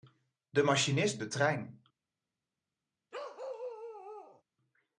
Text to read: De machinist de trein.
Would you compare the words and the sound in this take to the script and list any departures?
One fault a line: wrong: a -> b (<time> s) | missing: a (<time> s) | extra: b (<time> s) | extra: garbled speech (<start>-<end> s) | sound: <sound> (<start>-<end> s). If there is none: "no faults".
sound: bark (3.1-4.4 s)